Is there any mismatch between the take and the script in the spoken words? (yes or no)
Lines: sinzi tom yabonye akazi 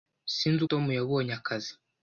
no